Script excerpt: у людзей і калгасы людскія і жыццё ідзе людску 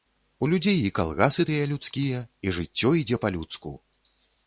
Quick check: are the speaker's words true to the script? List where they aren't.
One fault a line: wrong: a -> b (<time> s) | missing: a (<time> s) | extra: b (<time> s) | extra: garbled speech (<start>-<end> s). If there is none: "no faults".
extra: тыя (1.5 s)
extra: па (3.3 s)